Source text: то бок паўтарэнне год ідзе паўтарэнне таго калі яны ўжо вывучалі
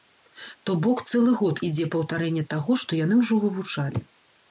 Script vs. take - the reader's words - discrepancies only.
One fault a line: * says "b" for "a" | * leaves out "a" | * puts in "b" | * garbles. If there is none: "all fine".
* says "цэлы" for "паўтарэнне"
* says "што" for "калі"